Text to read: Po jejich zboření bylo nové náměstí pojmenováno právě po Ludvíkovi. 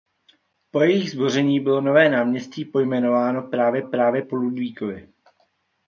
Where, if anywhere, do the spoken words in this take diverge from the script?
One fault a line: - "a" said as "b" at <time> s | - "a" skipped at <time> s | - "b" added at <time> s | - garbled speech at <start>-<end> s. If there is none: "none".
- "právě" added at 3.8 s